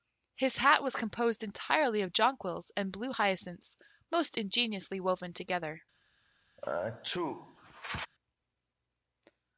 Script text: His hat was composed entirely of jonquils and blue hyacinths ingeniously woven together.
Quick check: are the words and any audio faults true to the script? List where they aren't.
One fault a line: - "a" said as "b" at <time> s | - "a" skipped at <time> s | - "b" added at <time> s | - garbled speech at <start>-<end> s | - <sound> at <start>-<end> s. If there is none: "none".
- "most" added at 4.1 s
- sneeze at 6.6-8.1 s